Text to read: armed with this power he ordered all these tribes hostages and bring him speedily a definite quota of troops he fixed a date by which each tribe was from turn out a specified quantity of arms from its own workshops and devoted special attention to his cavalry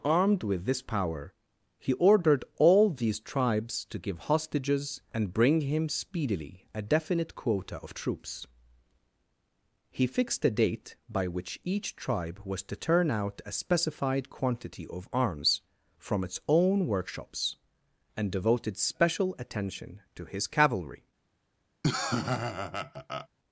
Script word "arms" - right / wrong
right